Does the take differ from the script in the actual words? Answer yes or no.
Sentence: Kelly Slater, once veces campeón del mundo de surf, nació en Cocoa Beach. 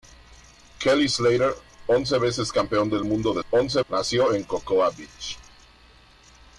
yes